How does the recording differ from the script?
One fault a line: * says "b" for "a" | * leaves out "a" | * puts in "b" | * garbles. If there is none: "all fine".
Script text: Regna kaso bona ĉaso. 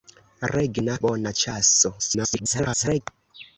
* leaves out "kaso"
* garbles